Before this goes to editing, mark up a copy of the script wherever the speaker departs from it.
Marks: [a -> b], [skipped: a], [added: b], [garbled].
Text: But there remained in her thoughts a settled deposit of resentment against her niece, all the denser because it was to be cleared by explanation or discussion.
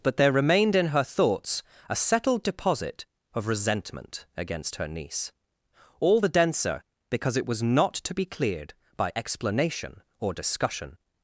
But there remained in her thoughts a settled deposit of resentment against her niece, all the denser because it was [added: not] to be cleared by explanation or discussion.